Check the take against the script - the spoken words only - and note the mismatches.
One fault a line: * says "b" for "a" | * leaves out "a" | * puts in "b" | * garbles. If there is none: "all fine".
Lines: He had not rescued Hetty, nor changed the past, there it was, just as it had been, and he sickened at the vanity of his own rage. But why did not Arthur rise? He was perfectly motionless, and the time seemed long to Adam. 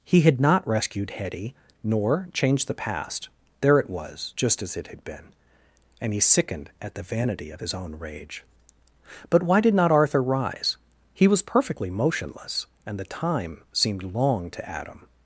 all fine